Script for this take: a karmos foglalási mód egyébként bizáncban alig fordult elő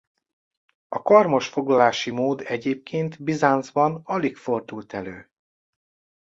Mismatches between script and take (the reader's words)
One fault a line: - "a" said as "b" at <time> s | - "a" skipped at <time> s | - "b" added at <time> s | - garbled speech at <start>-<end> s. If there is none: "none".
none